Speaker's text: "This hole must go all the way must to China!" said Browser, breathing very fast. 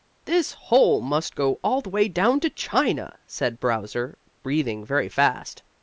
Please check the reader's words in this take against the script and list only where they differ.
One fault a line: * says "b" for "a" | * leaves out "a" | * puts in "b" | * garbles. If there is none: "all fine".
* says "down" for "must"